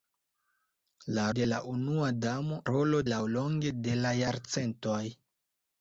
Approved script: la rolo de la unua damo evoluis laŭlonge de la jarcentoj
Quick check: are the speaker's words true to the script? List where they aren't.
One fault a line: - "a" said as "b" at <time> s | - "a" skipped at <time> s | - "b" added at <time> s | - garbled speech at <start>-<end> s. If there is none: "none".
- "rolo" skipped at 1.2 s
- "evoluis" said as "rolo" at 2.7 s